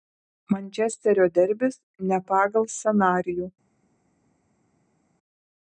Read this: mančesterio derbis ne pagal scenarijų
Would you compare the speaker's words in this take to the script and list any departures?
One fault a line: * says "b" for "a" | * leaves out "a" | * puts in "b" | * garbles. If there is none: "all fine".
all fine